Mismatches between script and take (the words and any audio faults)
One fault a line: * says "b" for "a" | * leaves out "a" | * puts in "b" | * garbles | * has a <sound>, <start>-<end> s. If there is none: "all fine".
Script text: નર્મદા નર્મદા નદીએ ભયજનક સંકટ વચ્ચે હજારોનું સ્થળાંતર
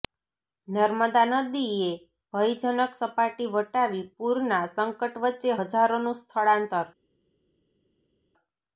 * leaves out "નર્મદા"
* puts in "સપાટી વટાવી પૂરના"